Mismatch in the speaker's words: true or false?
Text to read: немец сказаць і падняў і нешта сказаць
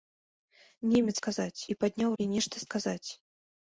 false